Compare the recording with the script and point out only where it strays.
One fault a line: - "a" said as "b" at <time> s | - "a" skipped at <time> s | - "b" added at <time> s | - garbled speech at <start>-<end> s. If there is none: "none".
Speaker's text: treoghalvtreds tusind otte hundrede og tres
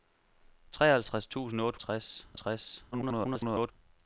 - "hundrede" said as "tres" at 1.8 s
- garbled speech at 2.9-3.7 s